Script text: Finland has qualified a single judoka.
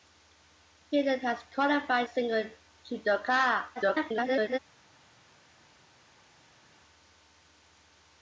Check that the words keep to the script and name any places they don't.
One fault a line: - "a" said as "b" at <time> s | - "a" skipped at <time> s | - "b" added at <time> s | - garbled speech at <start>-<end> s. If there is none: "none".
- "a" skipped at 2.1 s
- garbled speech at 3.8-4.6 s